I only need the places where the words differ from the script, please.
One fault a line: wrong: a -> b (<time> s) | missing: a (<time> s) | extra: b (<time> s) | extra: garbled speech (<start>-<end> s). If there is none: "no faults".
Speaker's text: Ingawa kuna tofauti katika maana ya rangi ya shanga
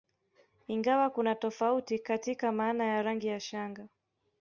no faults